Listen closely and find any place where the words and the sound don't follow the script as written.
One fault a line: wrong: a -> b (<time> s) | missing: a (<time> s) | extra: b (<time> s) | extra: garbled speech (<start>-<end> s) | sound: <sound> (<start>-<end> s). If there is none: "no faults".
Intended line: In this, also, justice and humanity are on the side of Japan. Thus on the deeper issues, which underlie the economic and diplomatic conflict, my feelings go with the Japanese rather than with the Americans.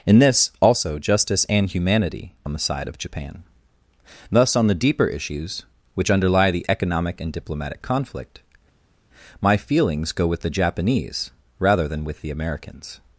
missing: are (2.3 s)